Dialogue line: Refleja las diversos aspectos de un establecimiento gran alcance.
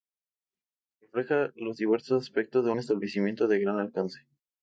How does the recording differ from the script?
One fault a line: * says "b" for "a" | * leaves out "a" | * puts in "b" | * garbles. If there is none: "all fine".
* says "los" for "las"
* puts in "de"